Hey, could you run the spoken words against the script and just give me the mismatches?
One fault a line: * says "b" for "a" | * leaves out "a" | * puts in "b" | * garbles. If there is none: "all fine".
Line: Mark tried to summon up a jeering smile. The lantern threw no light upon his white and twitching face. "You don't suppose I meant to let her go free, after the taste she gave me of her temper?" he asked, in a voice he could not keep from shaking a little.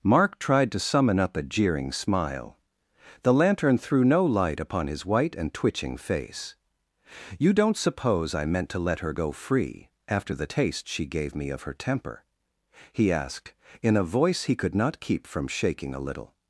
all fine